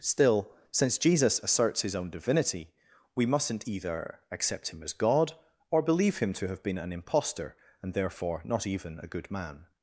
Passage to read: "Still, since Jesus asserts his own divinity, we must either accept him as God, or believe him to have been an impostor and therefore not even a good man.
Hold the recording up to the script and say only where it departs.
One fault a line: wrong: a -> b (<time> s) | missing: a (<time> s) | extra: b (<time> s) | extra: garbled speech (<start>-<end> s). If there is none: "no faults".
wrong: must -> mustn't (3.2 s)